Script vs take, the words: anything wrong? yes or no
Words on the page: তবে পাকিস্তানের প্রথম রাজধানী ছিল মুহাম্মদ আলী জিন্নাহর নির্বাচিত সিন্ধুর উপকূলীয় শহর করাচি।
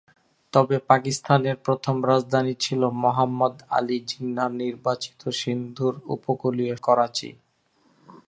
yes